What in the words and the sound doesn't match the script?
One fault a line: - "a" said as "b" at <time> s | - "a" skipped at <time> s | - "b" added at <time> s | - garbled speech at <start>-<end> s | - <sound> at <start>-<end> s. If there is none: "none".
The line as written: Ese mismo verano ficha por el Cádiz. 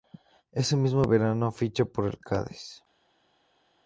none